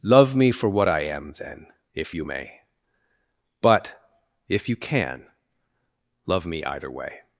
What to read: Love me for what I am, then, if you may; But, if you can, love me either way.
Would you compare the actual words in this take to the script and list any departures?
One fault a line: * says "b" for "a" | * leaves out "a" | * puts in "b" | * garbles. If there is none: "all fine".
all fine